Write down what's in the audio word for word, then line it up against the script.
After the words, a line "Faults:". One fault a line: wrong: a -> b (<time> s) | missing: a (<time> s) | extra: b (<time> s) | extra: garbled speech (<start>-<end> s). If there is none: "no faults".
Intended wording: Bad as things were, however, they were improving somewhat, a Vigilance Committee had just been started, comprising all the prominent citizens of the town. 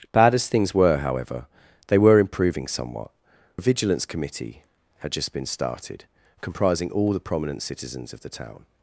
Bad as things were, however, they were improving somewhat, a Vigilance Committee had just been started, comprising all the prominent citizens of the town.
Faults:
no faults